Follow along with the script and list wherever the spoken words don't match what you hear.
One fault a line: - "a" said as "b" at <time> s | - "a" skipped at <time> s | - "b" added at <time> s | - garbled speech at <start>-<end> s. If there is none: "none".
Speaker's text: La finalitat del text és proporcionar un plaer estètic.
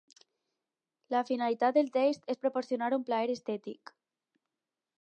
none